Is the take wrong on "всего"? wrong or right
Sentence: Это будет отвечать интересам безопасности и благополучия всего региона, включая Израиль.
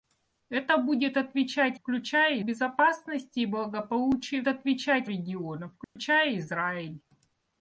wrong